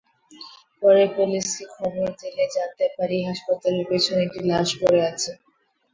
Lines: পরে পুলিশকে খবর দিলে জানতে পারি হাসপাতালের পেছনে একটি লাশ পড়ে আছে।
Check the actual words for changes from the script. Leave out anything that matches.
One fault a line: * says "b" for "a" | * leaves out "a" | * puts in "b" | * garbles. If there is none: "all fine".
all fine